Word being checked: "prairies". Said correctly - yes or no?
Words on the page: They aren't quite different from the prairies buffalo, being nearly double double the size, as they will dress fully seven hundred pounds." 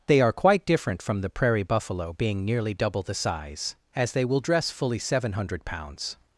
no